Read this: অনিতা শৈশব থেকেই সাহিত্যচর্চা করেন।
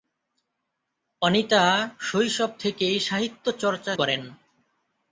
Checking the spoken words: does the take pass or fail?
pass